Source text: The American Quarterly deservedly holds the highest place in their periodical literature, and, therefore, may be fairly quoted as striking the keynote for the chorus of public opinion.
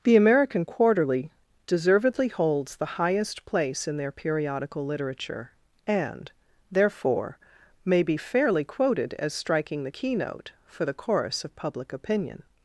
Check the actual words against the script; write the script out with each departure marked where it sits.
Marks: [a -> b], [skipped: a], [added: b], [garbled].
The American Quarterly deservedly holds the highest place in their periodical literature, and, therefore, may be fairly quoted as striking the keynote for the chorus of public opinion.